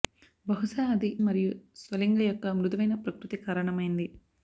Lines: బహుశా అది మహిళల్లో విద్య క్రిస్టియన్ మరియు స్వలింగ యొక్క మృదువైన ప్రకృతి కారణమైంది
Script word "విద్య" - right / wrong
wrong